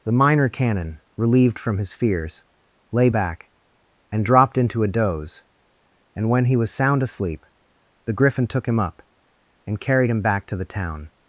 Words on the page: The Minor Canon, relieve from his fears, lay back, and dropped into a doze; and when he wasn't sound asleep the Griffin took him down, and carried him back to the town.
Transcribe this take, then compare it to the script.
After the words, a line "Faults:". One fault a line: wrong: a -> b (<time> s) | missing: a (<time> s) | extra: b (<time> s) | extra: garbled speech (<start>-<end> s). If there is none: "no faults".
The Minor Canon, relieved from his fears, lay back, and dropped into a doze; and when he was sound asleep the Griffin took him up, and carried him back to the town.
Faults:
wrong: relieve -> relieved (1.1 s)
wrong: wasn't -> was (6.6 s)
wrong: down -> up (8.8 s)